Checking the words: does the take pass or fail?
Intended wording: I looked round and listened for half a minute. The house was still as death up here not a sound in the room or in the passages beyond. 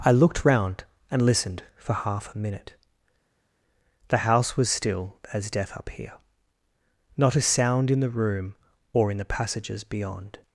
pass